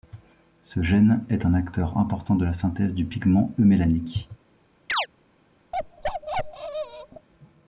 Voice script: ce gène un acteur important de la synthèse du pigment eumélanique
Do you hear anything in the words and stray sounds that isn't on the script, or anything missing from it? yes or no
yes